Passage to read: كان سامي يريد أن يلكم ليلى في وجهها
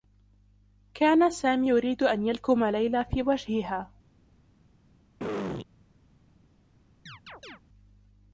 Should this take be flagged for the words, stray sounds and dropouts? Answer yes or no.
yes